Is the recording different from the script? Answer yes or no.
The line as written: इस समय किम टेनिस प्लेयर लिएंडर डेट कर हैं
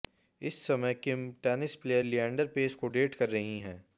yes